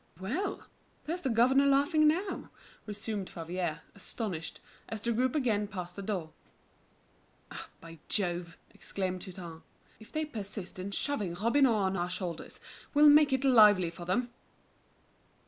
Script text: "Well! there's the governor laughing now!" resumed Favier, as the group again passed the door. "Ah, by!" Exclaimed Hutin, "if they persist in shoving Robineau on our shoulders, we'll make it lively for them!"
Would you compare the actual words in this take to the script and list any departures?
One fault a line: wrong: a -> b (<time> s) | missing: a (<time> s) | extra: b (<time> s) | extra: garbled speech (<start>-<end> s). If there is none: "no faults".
extra: astonished (3.9 s)
extra: Jove (8.1 s)